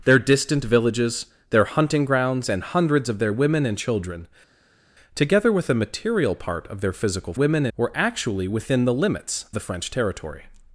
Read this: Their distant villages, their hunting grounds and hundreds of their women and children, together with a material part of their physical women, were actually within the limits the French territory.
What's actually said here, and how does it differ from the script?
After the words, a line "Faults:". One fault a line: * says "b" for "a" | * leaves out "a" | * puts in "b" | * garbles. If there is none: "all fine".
Their distant villages, their hunting grounds and hundreds of their women and children, together with a material part of their physical women, were actually within the limits the French territory.
Faults:
all fine